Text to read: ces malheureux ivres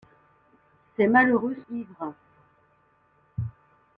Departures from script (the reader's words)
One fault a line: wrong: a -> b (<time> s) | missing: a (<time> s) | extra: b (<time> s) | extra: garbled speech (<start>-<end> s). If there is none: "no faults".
no faults